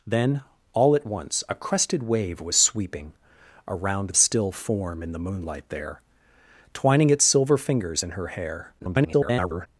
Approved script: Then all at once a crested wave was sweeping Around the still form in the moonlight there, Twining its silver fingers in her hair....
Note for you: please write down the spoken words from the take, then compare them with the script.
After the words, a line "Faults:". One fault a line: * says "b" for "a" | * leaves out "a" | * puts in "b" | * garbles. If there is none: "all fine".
Then all at once a crested wave was sweeping Around still form in the moonlight there, Twining its silver fingers in her hair.... [garbled]
Faults:
* leaves out "the"
* garbles